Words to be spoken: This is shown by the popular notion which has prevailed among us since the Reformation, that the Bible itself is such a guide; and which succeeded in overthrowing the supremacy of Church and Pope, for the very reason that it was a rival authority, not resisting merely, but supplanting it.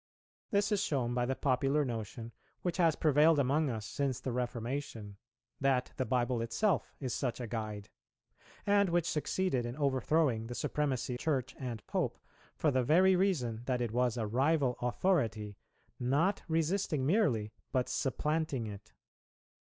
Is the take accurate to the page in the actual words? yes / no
no